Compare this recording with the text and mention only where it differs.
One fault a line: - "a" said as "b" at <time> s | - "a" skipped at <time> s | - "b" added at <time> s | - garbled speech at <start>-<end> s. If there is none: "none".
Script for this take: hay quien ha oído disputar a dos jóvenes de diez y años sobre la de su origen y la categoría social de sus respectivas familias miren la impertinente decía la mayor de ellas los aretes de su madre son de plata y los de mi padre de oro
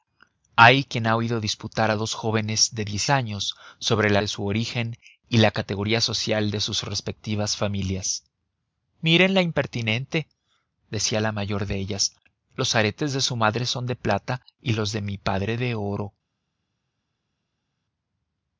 none